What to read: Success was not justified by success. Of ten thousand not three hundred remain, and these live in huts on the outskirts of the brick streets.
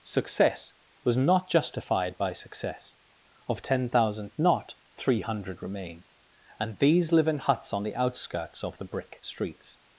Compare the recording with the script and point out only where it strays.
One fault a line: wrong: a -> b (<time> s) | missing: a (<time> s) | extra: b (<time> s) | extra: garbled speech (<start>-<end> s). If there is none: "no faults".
no faults